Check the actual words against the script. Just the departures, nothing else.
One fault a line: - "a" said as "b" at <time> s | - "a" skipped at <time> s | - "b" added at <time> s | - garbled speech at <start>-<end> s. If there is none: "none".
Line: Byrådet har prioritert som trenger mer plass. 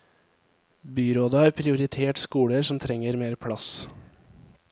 - "skoler" added at 2.2 s